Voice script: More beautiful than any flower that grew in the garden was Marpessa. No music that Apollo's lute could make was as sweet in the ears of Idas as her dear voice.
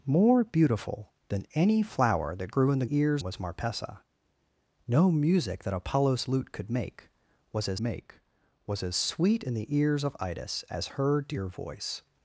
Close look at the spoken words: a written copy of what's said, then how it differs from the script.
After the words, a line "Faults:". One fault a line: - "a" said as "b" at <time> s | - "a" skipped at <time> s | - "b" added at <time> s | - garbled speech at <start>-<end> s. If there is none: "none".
More beautiful than any flower that grew in the ears was Marpessa. No music that Apollo's lute could make was as make was as sweet in the ears of Idas as her dear voice.
Faults:
- "garden" said as "ears" at 2.9 s
- "make was as" added at 7.8 s